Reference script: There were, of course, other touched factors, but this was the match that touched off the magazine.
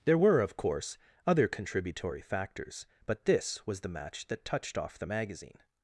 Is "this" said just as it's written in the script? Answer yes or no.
yes